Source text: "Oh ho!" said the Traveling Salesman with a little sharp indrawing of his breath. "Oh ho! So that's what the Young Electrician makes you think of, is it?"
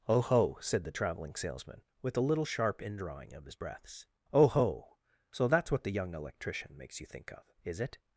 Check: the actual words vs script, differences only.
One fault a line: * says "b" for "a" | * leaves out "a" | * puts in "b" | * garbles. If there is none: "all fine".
* says "breaths" for "breath"